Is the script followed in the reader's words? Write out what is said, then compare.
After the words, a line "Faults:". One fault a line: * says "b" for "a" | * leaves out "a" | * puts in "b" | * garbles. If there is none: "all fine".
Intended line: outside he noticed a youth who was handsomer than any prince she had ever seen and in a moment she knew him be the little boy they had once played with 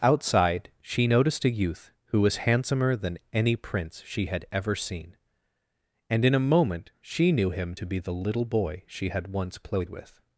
outside she noticed a youth who was handsomer than any prince she had ever seen and in a moment she knew him to be the little boy she had once played with
Faults:
* says "she" for "he"
* puts in "to"
* says "she" for "they"